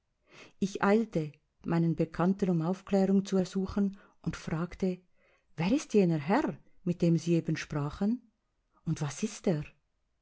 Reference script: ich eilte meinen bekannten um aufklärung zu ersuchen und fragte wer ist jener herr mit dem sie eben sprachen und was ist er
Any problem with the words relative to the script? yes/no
no